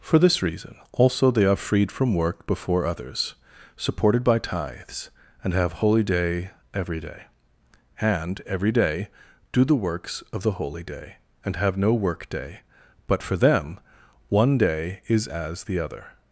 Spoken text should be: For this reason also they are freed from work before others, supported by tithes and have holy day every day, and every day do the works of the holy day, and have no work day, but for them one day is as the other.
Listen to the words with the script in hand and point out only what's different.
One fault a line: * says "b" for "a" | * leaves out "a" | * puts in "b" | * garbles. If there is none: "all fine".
all fine